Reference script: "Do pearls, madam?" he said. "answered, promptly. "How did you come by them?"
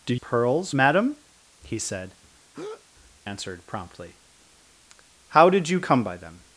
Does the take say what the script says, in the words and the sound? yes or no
no